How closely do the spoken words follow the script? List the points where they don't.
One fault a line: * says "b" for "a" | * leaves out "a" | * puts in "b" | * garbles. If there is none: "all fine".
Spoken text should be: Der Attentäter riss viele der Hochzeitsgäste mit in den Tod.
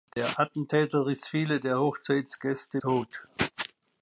* leaves out "mit in den"